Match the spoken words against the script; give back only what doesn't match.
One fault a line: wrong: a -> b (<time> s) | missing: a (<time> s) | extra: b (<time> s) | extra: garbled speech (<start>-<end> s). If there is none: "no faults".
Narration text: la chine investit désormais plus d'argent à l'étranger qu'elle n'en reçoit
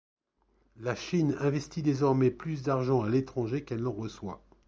no faults